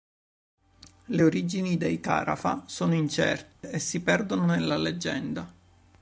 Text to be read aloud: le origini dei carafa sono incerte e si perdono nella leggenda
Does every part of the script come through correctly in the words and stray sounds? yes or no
no